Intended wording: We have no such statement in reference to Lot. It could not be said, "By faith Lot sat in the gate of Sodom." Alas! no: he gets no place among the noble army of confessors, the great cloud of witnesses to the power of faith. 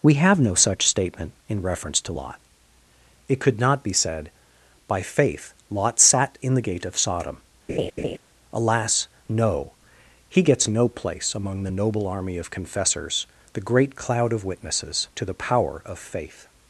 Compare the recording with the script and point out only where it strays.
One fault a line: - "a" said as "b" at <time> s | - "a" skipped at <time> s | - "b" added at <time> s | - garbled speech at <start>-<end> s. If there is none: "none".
none